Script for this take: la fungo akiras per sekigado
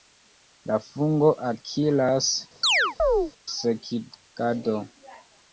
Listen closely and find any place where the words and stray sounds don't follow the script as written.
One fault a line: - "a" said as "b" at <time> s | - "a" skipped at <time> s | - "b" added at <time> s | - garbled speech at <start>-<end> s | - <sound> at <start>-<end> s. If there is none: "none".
- "per" skipped at 2.3 s
- chirp at 2.6-3.3 s